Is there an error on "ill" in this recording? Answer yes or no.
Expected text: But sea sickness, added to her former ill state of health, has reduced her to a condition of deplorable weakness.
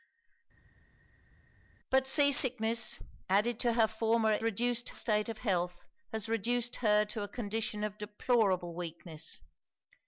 yes